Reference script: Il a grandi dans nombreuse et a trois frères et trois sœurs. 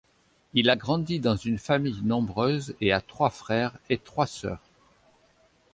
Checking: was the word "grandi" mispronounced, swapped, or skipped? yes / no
no